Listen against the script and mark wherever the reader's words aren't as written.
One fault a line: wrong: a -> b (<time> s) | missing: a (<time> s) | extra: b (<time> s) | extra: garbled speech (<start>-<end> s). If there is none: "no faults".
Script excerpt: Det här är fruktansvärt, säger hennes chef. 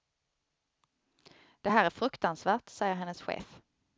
no faults